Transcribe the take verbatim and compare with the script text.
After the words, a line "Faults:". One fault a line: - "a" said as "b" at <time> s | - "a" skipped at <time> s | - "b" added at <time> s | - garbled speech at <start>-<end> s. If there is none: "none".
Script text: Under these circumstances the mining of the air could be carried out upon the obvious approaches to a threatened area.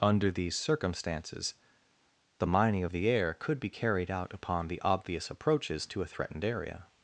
Under these circumstances the mining of the air could be carried out upon the obvious approaches to a threatened area.
Faults:
none